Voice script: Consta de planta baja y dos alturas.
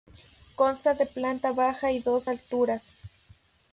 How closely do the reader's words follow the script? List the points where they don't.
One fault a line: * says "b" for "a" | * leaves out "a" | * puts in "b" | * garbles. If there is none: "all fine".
all fine